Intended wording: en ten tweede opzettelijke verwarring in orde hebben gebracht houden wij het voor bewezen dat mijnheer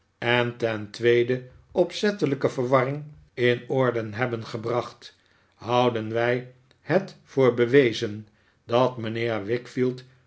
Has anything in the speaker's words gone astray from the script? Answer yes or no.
no